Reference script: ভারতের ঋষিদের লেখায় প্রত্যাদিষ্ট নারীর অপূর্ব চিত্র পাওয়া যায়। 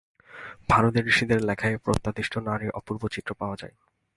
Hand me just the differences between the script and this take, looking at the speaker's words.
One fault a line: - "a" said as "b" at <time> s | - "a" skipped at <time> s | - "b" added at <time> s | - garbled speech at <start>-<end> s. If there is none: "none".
none